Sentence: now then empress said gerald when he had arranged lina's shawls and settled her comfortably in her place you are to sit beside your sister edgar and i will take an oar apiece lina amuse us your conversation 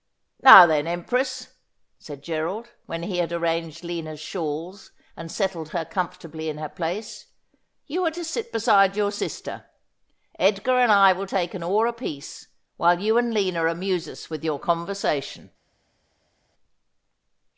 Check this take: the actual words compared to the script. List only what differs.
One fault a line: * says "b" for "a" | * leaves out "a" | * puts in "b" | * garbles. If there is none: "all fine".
* puts in "while you and"
* puts in "with"